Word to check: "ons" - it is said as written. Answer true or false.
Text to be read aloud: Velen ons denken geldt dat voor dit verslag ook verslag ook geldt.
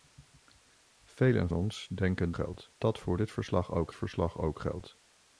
true